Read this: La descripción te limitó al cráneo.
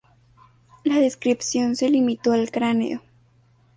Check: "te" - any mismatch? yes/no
yes